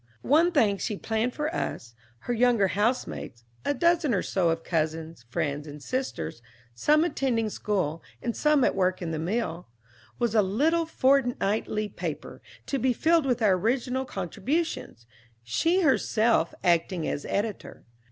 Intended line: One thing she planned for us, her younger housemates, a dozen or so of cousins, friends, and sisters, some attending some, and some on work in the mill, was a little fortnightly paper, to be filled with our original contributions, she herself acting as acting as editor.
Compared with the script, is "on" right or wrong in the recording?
wrong